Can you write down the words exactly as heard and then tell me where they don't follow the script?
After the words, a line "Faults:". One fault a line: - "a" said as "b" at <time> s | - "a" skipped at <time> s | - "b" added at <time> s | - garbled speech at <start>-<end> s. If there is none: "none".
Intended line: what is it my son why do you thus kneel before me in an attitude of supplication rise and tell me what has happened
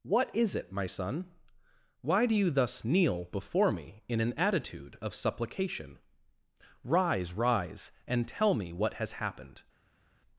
what is it my son why do you thus kneel before me in an attitude of supplication rise rise and tell me what has happened
Faults:
- "rise" added at 7.3 s